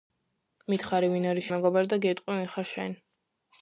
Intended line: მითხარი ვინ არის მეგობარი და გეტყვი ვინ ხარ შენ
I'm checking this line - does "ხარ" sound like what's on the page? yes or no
yes